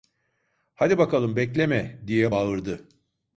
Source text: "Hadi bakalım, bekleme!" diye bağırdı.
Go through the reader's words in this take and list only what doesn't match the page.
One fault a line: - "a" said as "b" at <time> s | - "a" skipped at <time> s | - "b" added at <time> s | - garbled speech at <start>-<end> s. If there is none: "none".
none